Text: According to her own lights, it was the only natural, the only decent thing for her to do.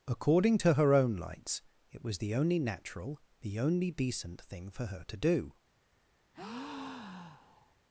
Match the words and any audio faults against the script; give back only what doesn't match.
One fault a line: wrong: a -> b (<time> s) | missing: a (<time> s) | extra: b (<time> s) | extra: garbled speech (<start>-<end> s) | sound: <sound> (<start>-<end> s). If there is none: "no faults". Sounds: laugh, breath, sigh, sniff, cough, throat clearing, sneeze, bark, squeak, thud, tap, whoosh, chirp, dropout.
sound: breath (6.3-7.8 s)